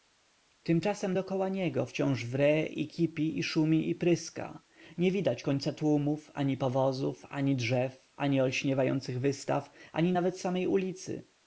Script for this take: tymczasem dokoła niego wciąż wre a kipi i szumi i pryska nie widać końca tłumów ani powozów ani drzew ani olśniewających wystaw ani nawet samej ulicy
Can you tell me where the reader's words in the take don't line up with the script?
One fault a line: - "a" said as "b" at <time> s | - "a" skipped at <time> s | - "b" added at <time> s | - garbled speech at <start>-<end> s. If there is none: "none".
- "a" said as "i" at 2.6 s